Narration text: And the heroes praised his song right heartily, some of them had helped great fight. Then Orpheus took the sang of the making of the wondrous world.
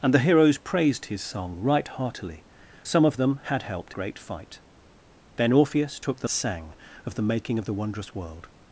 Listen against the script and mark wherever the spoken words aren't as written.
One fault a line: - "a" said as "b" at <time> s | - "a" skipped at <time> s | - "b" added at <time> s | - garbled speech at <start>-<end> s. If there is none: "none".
none